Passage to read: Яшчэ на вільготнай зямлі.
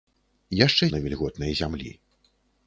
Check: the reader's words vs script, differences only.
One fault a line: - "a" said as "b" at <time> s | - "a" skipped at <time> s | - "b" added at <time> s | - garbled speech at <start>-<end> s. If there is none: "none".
none